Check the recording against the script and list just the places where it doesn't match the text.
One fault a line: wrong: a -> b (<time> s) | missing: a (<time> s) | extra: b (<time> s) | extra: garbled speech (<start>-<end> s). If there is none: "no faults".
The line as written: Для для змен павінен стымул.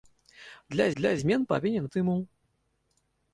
no faults